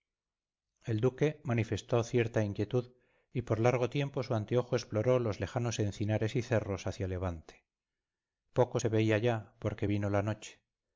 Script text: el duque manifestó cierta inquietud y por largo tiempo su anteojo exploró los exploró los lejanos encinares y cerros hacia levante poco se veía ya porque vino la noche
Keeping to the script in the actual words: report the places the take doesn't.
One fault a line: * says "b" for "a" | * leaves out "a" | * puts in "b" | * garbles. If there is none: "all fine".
* leaves out "exploró los"